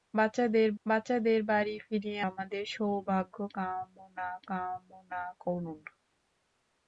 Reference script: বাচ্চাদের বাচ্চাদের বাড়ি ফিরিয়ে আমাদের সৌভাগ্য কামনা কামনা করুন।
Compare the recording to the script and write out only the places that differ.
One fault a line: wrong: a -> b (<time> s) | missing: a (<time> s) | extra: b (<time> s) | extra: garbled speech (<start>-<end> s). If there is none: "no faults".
no faults